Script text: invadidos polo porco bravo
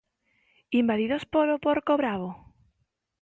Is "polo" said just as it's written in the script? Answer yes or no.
yes